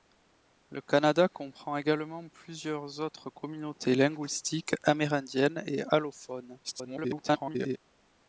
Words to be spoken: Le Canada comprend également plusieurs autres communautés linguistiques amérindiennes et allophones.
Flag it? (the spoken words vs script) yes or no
yes